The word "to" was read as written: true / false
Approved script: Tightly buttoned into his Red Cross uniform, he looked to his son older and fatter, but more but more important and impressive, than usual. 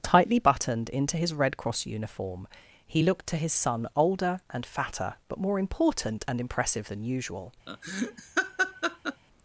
true